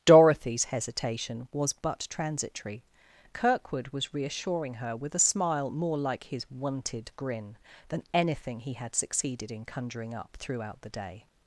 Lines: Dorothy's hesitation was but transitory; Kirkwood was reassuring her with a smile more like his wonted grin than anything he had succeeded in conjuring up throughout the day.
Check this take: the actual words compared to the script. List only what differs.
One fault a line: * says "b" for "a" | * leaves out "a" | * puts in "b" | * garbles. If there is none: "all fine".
all fine